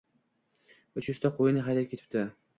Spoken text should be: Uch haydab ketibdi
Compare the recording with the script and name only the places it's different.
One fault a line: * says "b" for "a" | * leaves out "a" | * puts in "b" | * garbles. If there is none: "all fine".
* puts in "yuzta qo‘yini"